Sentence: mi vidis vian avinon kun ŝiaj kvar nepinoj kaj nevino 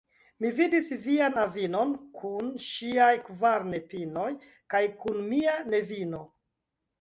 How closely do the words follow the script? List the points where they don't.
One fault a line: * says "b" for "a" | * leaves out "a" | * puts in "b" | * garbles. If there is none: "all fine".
* puts in "kun mia"